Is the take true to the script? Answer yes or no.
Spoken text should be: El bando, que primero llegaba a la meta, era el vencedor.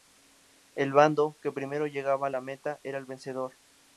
yes